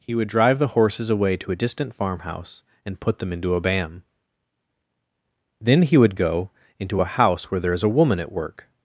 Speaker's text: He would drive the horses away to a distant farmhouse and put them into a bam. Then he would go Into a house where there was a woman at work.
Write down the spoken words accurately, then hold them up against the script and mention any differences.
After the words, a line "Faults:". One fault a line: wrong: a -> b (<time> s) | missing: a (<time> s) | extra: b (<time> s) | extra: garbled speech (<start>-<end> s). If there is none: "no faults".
He would drive the horses away to a distant farmhouse and put them into a bam. Then he would go Into a house where there is a woman at work.
Faults:
wrong: was -> is (7.7 s)